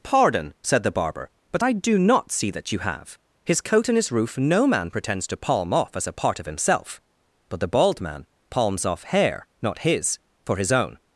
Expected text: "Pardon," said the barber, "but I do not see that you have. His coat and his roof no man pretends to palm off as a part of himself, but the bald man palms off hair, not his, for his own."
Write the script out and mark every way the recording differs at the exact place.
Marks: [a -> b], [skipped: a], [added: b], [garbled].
"Pardon," said the barber, "but I do not see that you have. His coat and his roof no man pretends to palm off as a part of himself, but the bald man palms off hair, not his, for his own."